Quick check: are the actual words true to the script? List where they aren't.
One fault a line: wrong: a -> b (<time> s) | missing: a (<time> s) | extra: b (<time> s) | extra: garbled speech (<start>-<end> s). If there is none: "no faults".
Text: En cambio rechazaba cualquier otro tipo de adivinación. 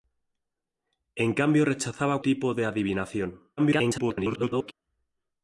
missing: cualquier otro (2.2 s)
extra: garbled speech (3.6-4.7 s)